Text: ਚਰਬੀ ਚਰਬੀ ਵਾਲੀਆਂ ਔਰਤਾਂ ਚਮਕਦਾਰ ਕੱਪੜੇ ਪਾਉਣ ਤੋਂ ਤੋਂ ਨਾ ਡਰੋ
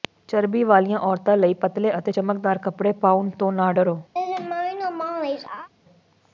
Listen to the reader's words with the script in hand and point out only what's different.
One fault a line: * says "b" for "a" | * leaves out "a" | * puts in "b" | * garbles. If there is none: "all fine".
* leaves out "ਚਰਬੀ"
* puts in "ਲਈ ਪਤਲੇ ਅਤੇ"
* leaves out "ਤੋਂ"